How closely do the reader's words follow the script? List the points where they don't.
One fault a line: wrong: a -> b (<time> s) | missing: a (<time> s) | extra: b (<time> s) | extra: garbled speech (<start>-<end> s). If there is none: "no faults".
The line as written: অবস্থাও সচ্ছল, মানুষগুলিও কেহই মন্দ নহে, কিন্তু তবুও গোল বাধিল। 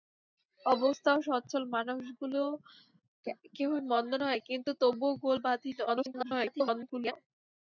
extra: garbled speech (5.9-7.1 s)